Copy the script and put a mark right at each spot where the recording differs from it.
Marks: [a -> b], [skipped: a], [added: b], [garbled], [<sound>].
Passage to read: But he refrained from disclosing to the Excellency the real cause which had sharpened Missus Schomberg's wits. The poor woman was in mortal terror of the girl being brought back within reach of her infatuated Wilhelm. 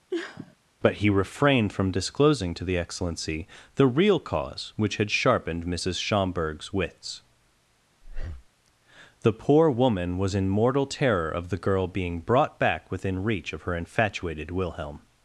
[sniff] But he refrained from disclosing to the Excellency the real cause which had sharpened Missus Schomberg's wits. [breath] The poor woman was in mortal terror of the girl being brought back within reach of her infatuated Wilhelm.